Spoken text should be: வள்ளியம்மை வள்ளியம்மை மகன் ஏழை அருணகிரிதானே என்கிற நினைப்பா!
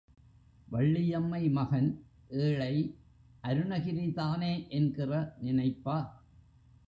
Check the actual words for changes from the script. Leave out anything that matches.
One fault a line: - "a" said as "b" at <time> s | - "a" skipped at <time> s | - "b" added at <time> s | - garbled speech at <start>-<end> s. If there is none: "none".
- "வள்ளியம்மை" skipped at 1.5 s